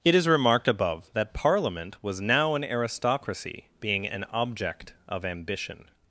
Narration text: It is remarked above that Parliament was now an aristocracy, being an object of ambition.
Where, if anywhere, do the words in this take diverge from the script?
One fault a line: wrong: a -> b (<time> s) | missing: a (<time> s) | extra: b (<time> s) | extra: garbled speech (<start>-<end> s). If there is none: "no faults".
no faults